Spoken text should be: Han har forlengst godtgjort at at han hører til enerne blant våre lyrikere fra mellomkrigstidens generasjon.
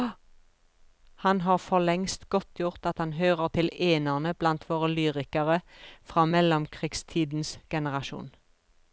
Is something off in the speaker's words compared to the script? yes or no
yes